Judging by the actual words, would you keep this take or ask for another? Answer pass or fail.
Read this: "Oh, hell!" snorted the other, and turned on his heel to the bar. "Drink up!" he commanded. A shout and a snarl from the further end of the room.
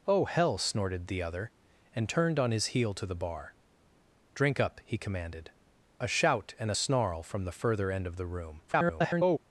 fail